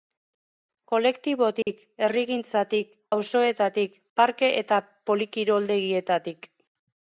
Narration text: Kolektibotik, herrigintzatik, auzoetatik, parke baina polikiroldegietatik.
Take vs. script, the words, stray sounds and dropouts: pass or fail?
fail